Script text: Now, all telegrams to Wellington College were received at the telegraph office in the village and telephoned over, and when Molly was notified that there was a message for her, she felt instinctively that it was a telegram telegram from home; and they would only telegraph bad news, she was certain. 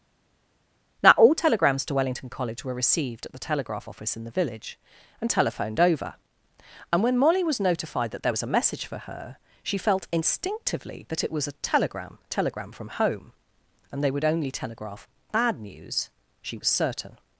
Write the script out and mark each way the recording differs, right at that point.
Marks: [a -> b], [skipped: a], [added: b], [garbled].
Now, all telegrams to Wellington College were received at the telegraph office in the village and telephoned over, and when Molly was notified that there was a message for her, she felt instinctively that it was a telegram telegram from home; and they would only telegraph bad news, she was certain.